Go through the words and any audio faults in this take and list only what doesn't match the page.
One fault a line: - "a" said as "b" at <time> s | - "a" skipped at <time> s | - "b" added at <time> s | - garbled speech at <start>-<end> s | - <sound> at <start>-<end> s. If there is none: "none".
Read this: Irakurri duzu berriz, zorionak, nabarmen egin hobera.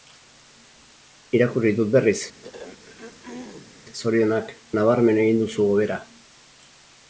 - "duzu" said as "dut" at 1.8 s
- throat clearing at 2.4-3.8 s
- "duzu" added at 5.5 s